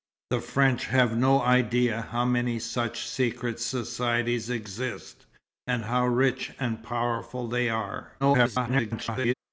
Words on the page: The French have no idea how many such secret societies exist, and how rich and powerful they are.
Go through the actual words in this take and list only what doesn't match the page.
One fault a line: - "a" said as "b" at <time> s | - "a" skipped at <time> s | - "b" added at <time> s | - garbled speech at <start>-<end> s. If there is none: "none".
- garbled speech at 8.2-9.3 s